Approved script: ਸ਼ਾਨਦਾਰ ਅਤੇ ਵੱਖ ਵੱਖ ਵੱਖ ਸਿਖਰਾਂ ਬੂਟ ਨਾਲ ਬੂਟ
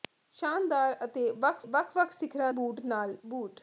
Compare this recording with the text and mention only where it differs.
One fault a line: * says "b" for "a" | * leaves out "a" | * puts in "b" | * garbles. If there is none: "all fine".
all fine